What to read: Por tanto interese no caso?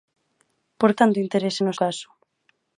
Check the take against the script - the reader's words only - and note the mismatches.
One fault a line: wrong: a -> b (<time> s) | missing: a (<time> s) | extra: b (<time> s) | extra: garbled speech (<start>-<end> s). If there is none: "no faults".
no faults